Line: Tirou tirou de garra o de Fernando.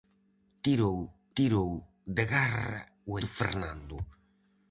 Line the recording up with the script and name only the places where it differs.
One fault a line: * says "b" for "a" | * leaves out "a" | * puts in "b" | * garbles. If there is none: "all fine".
all fine